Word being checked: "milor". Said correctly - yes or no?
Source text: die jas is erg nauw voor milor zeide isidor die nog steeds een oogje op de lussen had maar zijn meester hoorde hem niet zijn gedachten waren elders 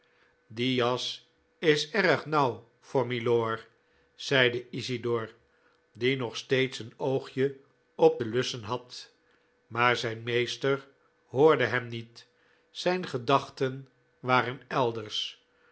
yes